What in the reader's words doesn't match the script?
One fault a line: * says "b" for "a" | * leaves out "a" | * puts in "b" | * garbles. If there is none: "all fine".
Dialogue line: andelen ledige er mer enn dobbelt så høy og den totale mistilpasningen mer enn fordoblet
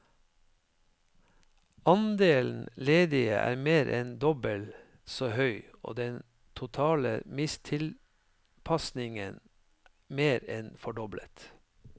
all fine